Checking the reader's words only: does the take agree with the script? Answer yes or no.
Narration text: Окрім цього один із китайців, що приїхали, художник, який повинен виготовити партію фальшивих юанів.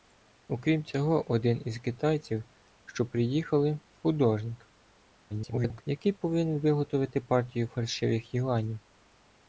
no